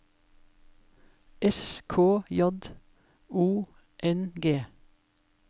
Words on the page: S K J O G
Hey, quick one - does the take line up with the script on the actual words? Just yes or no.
no